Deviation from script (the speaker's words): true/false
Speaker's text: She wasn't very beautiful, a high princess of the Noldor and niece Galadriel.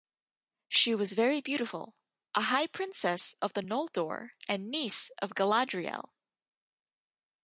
true